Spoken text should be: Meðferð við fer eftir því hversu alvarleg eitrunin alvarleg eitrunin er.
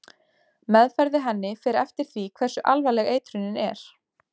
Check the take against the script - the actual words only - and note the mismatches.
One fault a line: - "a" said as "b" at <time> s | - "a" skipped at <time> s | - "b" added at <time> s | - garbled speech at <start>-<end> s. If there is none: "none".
- "henni" added at 1.3 s
- "alvarleg eitrunin" skipped at 3.6 s